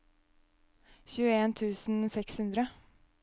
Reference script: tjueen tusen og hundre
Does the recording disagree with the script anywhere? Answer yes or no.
yes